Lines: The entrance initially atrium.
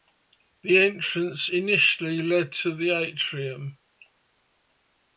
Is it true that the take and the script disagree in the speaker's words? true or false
true